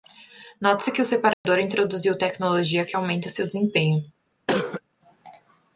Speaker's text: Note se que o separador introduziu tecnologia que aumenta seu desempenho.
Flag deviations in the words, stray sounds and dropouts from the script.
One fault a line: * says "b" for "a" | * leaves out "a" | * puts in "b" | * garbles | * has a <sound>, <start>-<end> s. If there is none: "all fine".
* has a dropout, 1.3-1.4 s
* has a cough, 4.5-4.8 s